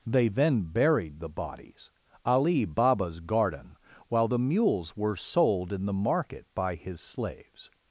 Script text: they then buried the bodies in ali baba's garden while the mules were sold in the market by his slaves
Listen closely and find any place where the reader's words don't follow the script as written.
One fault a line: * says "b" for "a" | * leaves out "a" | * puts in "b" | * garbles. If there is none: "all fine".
* leaves out "in"